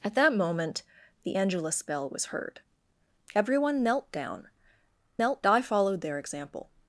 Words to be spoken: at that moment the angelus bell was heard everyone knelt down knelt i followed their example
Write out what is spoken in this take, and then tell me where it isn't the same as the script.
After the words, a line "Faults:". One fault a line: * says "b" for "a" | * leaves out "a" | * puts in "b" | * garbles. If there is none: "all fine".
at that moment the angelus bell was heard everyone knelt down knelt i followed their example
Faults:
all fine